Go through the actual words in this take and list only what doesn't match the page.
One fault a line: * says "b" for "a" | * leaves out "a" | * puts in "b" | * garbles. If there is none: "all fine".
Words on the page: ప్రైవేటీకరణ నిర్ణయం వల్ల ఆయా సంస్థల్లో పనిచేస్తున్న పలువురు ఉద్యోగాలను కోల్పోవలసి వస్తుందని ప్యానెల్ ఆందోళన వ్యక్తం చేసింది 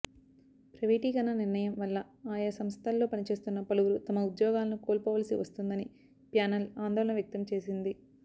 * puts in "తమ"